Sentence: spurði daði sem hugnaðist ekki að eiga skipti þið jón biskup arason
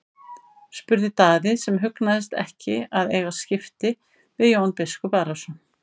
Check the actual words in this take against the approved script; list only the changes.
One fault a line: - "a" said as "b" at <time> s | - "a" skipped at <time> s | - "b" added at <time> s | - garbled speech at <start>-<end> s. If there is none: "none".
- "þið" said as "við" at 4.4 s